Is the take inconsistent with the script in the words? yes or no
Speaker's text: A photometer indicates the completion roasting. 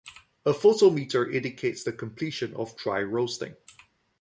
yes